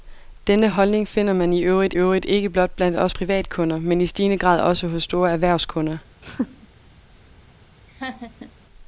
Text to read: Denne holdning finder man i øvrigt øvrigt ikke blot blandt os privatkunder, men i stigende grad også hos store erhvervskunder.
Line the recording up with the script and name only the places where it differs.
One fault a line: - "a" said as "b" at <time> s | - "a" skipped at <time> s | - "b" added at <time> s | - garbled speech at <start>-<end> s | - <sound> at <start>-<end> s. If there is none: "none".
- laugh at 6.2-6.7 s
- laugh at 7.9-8.5 s